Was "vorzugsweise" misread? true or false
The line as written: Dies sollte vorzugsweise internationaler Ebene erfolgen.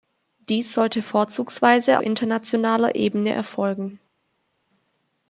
false